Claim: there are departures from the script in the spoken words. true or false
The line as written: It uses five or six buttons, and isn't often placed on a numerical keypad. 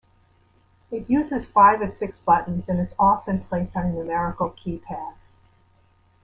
true